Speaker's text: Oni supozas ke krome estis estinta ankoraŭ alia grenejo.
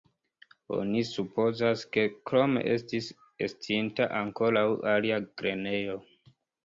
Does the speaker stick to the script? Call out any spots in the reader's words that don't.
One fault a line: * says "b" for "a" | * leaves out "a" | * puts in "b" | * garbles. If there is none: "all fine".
all fine